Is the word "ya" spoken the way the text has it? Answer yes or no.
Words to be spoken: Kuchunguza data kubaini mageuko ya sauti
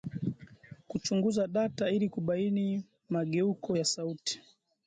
yes